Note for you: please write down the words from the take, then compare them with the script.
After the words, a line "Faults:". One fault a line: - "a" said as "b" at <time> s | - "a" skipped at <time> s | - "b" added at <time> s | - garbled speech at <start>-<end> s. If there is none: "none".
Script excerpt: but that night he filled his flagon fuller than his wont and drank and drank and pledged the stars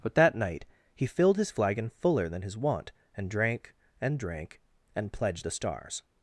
but that night he filled his flagon fuller than his wont and drank and drank and pledged the stars
Faults:
none